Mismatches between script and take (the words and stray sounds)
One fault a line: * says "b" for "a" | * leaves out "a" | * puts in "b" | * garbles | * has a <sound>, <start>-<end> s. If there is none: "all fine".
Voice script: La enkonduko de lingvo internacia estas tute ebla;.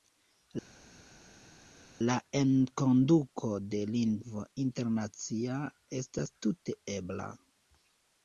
all fine